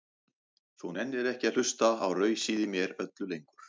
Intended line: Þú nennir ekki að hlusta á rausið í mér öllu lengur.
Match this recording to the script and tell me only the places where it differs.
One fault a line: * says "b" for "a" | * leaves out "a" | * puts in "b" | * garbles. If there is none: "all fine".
all fine